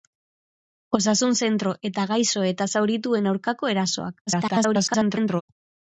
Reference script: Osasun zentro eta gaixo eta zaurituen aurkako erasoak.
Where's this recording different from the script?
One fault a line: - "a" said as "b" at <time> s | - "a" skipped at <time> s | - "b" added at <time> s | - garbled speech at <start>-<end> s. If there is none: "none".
- garbled speech at 4.3-5.4 s